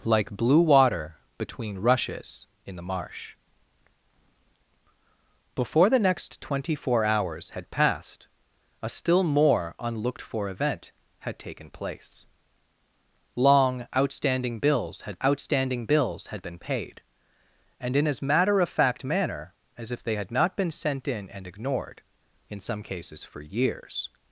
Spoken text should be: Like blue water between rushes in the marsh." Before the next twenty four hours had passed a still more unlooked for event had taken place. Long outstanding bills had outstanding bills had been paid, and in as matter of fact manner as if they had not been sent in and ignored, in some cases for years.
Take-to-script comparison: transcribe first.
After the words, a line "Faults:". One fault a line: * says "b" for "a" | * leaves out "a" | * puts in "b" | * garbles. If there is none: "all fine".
Like blue water between rushes in the marsh." Before the next twenty four hours had passed a still more unlooked for event had taken place. Long outstanding bills had outstanding bills had been paid, and in as matter of fact manner as if they had not been sent in and ignored, in some cases for years.
Faults:
all fine